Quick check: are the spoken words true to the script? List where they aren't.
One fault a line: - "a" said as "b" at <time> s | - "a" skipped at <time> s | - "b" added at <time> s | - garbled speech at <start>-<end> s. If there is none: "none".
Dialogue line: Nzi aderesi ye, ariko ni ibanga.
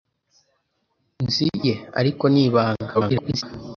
- "aderesi" skipped at 1.5 s
- garbled speech at 2.9-3.4 s